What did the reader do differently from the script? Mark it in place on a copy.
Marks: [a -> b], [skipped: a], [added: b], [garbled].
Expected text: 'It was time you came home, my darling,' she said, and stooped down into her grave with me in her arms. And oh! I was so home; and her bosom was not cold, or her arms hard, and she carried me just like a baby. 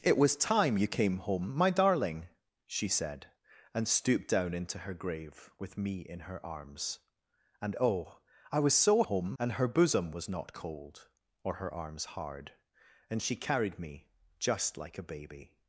'It was time you came home, my darling,' she said, and stooped down into her grave with me in her arms. And oh! I was so home; and her bosom was not cold, or her arms hard, and she carried me just like a baby.